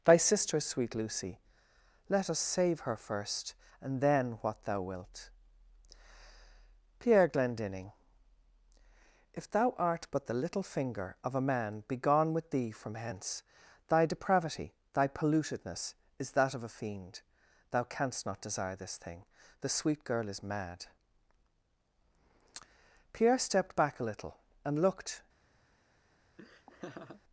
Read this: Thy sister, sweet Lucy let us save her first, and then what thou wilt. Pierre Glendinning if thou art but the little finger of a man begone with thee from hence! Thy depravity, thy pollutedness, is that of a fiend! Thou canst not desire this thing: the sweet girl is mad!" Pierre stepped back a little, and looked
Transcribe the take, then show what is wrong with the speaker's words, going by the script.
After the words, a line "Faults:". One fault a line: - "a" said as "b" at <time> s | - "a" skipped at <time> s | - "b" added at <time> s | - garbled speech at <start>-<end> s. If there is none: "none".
Thy sister, sweet Lucy let us save her first, and then what thou wilt. Pierre Glendinning if thou art but the little finger of a man begone with thee from hence! Thy depravity, thy pollutedness, is that of a fiend! Thou canst not desire this thing: the sweet girl is mad!" Pierre stepped back a little, and looked
Faults:
none